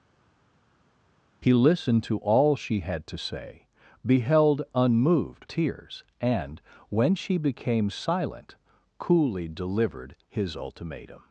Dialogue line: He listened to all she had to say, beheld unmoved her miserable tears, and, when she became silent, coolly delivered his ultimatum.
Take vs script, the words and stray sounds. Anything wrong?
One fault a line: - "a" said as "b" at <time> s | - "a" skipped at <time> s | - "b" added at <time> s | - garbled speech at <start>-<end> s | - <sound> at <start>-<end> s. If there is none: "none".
- "her miserable" skipped at 5.4 s